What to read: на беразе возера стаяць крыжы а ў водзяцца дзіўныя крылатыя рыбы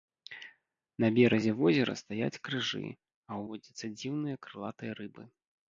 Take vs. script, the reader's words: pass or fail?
pass